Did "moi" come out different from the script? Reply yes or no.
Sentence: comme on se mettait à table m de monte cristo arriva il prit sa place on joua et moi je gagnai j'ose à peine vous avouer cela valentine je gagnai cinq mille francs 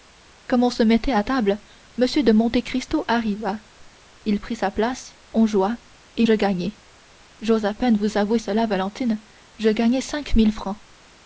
yes